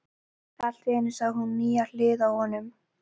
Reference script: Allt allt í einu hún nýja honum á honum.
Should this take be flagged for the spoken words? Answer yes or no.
yes